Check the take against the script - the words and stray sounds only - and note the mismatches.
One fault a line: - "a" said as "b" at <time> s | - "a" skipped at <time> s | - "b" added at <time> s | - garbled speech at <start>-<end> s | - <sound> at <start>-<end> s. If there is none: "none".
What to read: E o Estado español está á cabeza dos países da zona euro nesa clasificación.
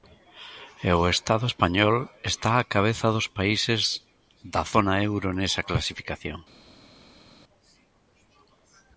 none